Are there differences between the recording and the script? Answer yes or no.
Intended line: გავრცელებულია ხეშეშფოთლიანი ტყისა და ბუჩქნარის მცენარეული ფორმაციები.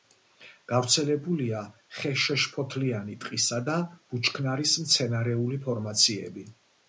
no